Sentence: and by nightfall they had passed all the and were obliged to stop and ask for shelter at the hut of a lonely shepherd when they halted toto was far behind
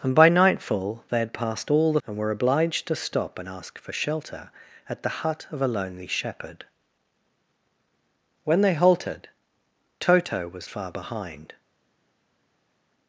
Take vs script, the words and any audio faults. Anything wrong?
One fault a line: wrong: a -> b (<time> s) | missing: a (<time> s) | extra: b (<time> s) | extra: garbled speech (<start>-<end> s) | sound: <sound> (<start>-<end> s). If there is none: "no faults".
no faults